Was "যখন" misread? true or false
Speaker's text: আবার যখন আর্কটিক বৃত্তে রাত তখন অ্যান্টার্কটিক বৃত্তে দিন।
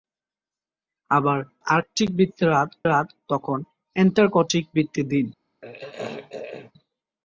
true